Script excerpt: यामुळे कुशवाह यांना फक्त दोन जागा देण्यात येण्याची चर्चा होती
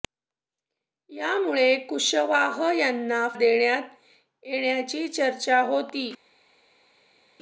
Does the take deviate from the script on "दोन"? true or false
true